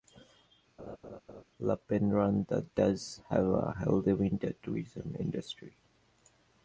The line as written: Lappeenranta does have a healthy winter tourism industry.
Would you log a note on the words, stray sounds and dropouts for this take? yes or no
yes